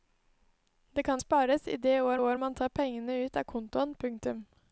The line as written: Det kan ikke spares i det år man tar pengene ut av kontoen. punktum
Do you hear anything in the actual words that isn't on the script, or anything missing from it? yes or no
yes